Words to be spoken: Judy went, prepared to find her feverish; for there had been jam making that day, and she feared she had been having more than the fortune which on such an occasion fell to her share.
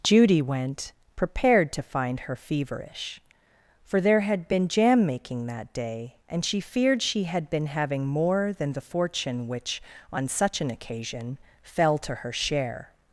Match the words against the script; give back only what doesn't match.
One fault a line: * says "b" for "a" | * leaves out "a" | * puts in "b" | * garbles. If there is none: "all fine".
all fine